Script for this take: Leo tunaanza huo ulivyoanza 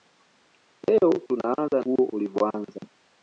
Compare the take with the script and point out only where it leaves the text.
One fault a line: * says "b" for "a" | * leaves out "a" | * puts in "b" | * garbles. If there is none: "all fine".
all fine